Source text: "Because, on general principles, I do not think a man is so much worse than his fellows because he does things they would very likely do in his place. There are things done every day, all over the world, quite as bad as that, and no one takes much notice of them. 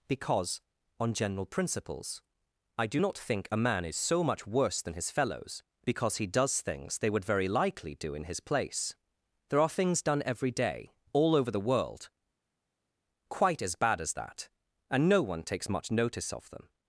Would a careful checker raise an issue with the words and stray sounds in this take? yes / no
no